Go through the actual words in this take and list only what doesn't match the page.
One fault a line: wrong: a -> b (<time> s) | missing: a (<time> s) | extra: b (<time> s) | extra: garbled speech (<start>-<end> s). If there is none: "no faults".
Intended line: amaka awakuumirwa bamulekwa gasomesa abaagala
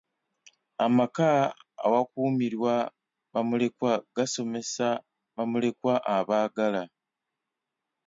extra: bamulekwa (5.3 s)